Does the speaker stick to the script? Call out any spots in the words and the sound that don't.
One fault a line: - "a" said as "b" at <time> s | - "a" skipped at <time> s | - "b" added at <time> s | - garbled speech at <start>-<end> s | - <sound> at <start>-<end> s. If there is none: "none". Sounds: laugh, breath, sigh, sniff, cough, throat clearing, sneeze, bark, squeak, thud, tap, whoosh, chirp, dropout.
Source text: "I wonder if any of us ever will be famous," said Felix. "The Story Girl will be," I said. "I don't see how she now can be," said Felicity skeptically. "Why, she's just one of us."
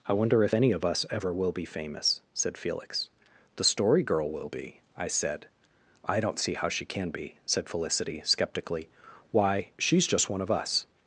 - "now" skipped at 6.9 s